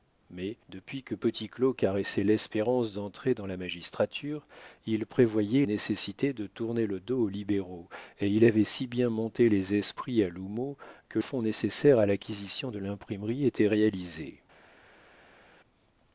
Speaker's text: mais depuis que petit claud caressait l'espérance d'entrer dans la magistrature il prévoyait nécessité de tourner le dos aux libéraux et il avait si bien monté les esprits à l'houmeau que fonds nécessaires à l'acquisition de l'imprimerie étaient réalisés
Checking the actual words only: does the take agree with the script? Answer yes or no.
yes